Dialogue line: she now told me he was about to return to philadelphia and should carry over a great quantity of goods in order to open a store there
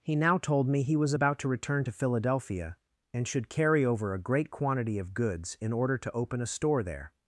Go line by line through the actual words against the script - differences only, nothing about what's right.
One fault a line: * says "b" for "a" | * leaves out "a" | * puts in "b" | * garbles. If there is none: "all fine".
* says "he" for "she"